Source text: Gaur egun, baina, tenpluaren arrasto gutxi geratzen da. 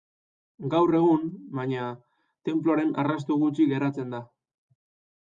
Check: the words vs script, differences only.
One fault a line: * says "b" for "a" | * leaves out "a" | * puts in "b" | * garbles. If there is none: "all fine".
all fine